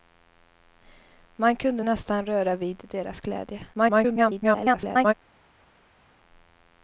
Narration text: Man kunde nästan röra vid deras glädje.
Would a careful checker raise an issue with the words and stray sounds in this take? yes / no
yes